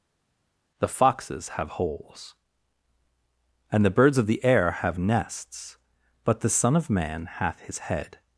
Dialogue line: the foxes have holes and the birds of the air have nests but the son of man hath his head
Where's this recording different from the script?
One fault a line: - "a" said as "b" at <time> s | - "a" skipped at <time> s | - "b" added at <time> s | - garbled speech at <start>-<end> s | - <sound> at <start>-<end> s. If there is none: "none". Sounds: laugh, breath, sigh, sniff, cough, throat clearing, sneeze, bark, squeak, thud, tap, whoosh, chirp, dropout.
none